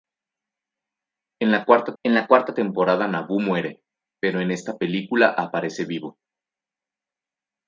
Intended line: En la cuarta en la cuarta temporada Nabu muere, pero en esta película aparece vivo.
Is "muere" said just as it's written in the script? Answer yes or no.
yes